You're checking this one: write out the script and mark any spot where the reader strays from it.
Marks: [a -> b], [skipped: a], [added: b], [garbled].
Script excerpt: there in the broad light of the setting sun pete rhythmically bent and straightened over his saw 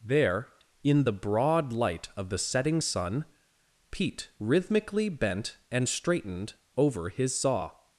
there in the broad light of the setting sun pete rhythmically bent and straightened over his saw